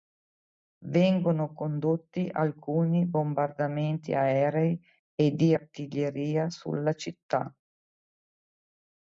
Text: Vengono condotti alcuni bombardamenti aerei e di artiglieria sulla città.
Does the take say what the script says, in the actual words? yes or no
yes